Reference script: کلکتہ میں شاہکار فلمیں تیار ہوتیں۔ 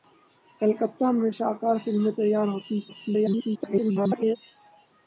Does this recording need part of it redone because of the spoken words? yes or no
yes